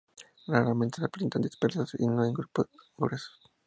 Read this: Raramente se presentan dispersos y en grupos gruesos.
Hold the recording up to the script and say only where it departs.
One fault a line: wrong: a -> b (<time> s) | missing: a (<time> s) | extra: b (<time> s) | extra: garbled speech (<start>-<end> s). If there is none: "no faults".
extra: no (2.1 s)